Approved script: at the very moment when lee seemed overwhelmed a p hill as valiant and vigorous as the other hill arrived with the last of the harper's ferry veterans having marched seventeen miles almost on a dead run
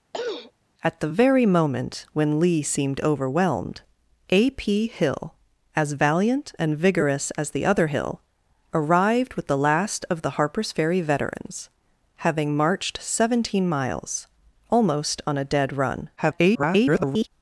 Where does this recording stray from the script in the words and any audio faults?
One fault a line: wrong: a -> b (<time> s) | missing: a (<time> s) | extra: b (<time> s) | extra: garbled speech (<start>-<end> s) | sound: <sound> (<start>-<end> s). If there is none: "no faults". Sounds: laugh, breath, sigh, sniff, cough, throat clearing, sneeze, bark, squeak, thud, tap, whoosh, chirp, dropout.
sound: throat clearing (0.1-0.5 s)
extra: garbled speech (16.2-17.3 s)